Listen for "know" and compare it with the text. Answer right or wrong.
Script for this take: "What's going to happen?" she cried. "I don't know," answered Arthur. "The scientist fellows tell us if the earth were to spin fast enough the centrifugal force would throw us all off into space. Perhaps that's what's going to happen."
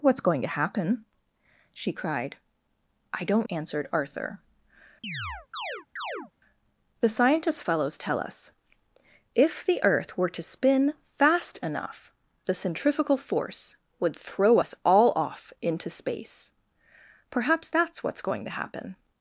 wrong